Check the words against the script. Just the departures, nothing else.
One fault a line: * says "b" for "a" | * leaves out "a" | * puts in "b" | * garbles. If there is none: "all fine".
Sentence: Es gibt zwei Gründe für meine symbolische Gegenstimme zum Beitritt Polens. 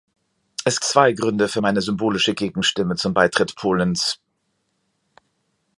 * leaves out "gibt"